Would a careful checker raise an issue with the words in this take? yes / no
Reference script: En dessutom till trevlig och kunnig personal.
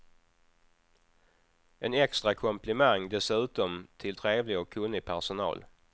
yes